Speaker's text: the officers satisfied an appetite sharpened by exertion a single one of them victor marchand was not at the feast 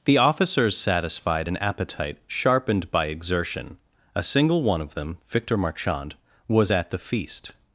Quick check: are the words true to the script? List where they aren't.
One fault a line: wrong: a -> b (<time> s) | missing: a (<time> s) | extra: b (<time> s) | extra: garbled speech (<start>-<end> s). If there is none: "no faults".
missing: not (6.7 s)